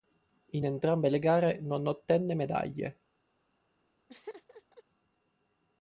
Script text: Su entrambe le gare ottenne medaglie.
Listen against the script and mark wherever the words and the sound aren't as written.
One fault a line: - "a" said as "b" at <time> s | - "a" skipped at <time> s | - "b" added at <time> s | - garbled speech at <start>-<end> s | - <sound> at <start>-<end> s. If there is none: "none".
- "Su" said as "In" at 0.5 s
- "non" added at 1.6 s
- laugh at 4.1-4.8 s